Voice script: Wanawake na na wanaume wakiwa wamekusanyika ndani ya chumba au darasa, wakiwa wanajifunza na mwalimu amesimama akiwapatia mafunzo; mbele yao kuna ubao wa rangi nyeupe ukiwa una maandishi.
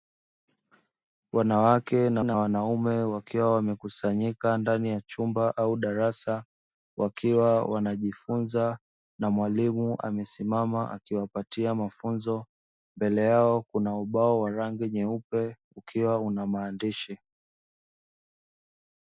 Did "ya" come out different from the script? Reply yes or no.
no